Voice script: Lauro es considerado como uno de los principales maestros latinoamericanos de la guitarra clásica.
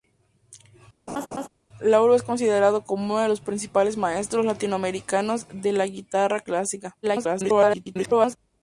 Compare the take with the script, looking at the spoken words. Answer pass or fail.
fail